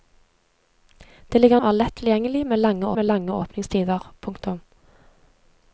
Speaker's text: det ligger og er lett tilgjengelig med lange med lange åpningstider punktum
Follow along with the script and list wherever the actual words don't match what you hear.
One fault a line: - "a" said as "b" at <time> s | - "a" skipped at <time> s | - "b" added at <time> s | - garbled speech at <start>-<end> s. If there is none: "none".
none